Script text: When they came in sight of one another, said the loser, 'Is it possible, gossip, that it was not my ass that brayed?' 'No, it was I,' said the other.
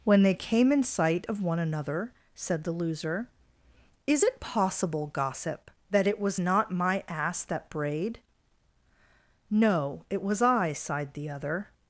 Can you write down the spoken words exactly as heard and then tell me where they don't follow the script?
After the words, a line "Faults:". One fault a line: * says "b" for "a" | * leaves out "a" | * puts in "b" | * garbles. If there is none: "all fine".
When they came in sight of one another, said the loser, 'Is it possible, gossip, that it was not my ass that brayed?' 'No, it was I,' sighed the other.
Faults:
* says "sighed" for "said"